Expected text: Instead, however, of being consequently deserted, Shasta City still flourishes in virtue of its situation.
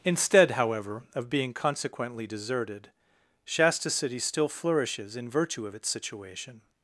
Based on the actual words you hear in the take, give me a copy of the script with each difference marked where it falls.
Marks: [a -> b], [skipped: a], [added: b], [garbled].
Instead, however, of being consequently deserted, Shasta City still flourishes in virtue of its situation.